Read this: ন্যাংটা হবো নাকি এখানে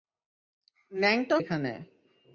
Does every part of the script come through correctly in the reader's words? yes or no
no